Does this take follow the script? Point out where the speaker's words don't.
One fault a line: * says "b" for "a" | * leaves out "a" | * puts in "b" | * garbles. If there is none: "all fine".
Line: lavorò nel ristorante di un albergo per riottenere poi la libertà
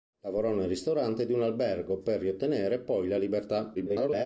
* garbles